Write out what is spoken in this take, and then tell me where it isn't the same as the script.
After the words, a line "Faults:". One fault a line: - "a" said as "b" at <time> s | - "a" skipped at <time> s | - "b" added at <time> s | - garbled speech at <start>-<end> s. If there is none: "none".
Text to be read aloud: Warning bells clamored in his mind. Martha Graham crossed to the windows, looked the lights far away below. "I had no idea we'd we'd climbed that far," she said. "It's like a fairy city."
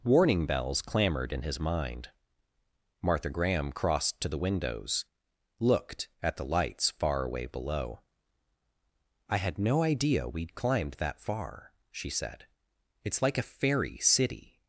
Warning bells clamored in his mind. Martha Graham crossed to the windows, looked at the lights far away below. "I had no idea we'd climbed that far," she said. "It's like a fairy city."
Faults:
- "at" added at 6.2 s
- "we'd" skipped at 10.6 s